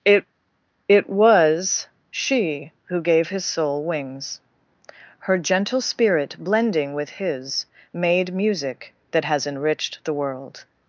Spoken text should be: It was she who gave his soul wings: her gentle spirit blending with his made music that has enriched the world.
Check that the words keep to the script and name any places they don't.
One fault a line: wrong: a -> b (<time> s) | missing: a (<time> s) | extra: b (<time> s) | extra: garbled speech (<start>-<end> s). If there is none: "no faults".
extra: it (0.9 s)